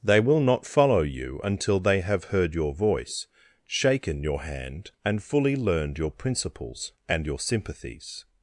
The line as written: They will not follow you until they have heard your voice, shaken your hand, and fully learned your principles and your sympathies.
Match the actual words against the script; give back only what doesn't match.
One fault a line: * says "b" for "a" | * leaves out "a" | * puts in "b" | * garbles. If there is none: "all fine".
all fine